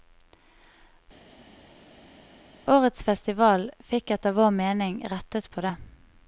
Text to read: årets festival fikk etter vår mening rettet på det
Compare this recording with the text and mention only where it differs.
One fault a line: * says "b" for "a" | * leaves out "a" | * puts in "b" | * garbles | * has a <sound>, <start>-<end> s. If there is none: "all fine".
all fine